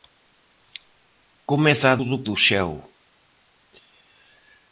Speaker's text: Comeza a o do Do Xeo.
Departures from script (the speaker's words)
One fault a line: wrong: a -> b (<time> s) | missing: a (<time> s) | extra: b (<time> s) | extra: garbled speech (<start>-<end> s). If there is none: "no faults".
no faults